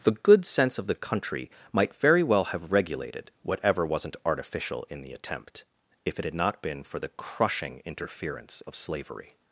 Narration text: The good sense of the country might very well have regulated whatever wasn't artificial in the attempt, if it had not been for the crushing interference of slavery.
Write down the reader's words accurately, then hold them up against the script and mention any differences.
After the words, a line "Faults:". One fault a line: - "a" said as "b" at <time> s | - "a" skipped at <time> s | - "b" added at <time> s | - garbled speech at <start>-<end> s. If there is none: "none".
The good sense of the country might very well have regulated whatever wasn't artificial in the attempt, if it had not been for the crushing interference of slavery.
Faults:
none